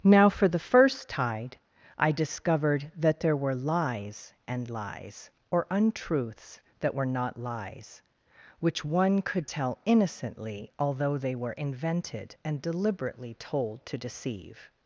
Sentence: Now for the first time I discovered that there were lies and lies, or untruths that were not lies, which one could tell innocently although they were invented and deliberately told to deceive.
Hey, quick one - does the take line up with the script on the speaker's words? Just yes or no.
no